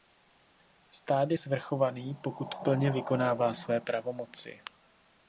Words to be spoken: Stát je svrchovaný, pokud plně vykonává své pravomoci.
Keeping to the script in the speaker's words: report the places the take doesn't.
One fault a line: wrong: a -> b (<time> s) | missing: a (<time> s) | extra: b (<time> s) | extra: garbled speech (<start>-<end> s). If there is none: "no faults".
no faults